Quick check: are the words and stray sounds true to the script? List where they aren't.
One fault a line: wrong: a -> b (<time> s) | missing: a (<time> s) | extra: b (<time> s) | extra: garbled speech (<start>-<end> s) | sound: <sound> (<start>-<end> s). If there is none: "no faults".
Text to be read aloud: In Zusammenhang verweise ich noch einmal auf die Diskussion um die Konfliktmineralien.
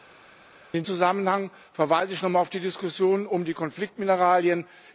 no faults